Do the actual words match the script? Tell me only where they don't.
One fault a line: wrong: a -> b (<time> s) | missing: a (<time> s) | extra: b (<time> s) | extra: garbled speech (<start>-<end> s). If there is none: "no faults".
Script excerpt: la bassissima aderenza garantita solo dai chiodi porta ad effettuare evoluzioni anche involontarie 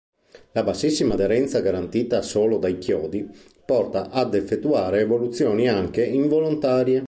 no faults